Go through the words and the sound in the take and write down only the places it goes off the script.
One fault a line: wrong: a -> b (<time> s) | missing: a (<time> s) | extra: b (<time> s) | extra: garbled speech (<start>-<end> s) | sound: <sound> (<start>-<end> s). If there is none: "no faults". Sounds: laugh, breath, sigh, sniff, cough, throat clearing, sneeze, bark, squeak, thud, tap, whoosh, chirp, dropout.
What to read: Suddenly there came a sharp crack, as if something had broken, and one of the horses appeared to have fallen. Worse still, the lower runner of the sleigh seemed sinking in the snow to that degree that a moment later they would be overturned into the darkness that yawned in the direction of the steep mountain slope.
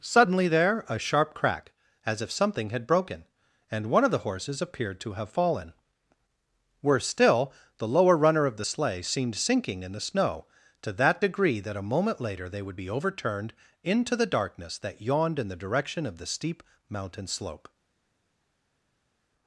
missing: came (0.8 s)